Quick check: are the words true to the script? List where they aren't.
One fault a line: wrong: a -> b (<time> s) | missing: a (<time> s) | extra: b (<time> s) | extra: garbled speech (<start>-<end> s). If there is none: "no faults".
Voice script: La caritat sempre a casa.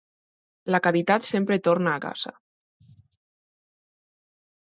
extra: torna (1.7 s)